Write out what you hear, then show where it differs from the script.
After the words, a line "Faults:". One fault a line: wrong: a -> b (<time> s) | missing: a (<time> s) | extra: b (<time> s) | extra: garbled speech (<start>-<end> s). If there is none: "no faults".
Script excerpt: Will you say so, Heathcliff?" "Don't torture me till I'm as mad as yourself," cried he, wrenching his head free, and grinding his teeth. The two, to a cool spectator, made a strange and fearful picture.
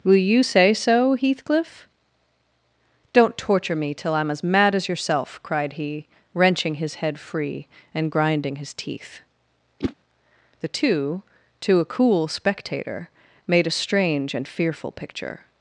Will you say so, Heathcliff?" "Don't torture me till I'm as mad as yourself," cried he, wrenching his head free, and grinding his teeth. The two, to a cool spectator, made a strange and fearful picture.
Faults:
no faults